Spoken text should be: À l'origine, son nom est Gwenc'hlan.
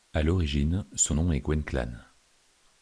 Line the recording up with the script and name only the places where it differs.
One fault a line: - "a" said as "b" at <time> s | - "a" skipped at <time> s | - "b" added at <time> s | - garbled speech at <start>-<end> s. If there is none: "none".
none